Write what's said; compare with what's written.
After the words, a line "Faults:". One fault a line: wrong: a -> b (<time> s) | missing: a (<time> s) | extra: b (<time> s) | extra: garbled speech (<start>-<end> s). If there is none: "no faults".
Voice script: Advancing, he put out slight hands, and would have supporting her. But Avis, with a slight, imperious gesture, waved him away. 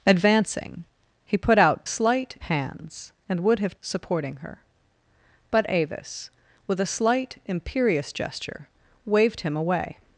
Advancing, he put out slight hands, and would have supporting her. But Avis, with a slight, imperious gesture, waved him away.
Faults:
no faults